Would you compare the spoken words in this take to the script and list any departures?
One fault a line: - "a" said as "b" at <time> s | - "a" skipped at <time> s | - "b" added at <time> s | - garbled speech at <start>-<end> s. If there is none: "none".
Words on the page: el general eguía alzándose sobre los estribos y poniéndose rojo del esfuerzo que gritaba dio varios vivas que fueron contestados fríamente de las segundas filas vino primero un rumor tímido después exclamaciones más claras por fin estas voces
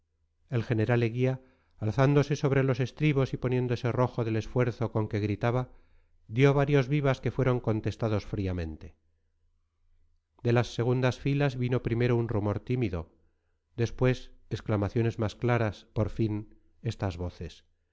- "con" added at 4.9 s